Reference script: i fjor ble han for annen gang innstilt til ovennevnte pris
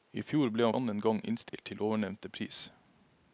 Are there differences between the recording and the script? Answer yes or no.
yes